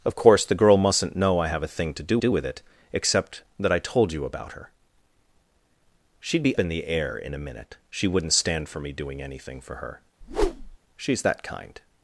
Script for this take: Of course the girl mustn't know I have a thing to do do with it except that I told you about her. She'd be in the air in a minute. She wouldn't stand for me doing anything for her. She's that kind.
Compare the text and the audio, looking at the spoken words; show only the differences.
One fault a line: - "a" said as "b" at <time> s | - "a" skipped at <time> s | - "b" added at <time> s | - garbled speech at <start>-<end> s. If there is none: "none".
none